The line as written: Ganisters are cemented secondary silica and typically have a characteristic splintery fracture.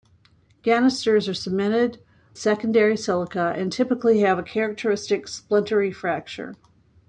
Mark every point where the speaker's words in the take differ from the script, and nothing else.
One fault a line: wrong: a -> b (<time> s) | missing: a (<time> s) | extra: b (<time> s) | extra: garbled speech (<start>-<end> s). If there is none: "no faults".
no faults